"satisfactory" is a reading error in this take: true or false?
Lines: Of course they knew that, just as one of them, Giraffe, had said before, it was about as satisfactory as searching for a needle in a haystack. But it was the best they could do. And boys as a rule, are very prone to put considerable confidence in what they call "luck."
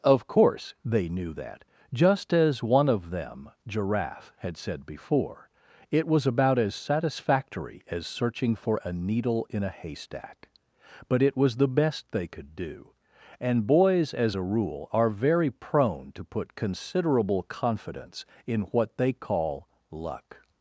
false